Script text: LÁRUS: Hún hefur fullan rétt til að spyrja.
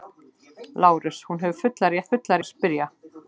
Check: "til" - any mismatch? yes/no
yes